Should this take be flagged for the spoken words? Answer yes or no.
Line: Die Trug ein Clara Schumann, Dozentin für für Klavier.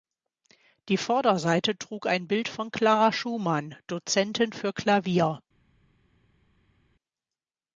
yes